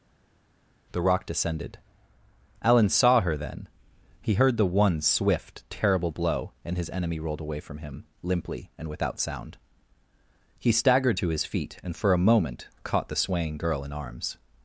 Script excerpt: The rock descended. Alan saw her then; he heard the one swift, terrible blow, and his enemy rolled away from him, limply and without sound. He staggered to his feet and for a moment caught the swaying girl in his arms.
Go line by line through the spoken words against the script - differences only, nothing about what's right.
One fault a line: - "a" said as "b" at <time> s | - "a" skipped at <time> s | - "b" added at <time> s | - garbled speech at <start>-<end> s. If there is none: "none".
- "his" skipped at 13.9 s